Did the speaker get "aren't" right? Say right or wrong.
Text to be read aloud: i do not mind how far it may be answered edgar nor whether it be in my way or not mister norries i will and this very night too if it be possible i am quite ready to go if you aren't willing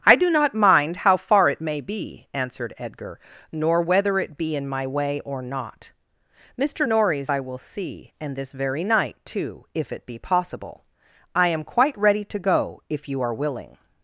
wrong